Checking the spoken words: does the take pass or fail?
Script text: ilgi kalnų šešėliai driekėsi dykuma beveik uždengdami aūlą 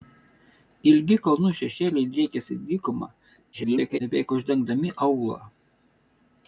fail